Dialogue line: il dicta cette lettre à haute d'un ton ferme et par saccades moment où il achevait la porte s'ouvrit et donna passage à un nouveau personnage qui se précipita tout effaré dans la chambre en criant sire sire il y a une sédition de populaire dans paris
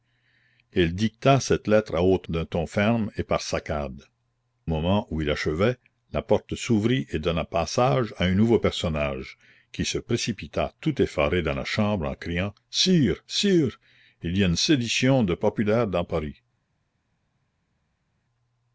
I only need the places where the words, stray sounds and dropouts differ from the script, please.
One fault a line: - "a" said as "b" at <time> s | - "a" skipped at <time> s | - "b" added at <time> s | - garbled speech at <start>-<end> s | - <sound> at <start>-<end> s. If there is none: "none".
none